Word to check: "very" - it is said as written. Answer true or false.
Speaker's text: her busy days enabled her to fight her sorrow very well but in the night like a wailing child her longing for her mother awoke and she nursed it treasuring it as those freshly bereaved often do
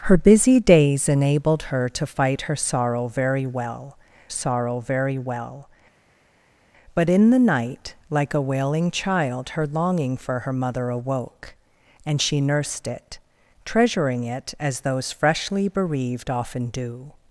true